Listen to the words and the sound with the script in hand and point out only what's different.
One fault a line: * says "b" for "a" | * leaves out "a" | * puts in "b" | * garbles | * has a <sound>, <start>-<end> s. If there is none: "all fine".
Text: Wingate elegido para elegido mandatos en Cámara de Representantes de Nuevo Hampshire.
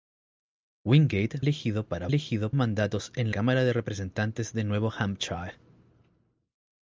all fine